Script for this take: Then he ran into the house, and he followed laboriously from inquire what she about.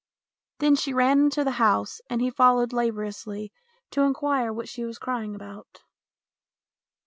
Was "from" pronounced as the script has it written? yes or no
no